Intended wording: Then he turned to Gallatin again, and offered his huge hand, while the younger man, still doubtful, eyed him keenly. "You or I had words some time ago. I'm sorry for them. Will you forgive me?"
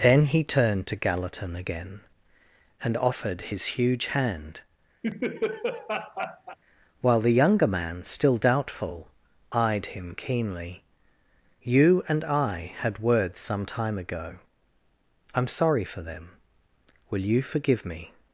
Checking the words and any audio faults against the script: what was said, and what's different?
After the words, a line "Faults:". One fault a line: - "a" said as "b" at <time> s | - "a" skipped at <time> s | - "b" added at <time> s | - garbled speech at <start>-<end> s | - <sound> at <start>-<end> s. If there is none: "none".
Then he turned to Gallatin again, and offered his huge hand, while the younger man, still doubtful, eyed him keenly. "You and I had words some time ago. I'm sorry for them. Will you forgive me?"
Faults:
- laugh at 5.0-6.6 s
- "or" said as "and" at 12.1 s